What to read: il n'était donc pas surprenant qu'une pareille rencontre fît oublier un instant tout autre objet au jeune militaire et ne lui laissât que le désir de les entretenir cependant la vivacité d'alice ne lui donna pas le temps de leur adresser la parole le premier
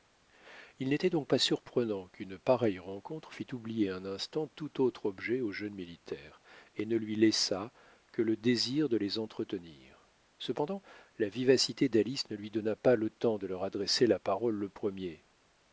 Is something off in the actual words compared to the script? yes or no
no